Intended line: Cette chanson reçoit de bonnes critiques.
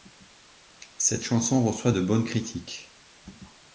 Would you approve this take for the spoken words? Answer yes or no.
yes